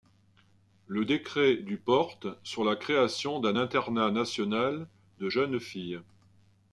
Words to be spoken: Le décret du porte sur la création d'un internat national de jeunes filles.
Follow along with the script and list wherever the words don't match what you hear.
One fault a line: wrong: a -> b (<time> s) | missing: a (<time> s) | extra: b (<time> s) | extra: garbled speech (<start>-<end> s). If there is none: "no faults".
no faults